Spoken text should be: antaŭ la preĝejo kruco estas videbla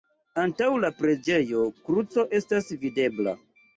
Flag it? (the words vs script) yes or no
no